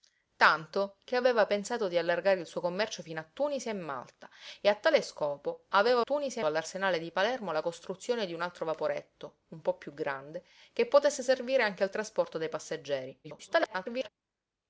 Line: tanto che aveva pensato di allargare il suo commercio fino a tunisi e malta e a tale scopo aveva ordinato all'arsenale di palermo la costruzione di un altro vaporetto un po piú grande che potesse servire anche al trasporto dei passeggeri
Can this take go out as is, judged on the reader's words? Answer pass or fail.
fail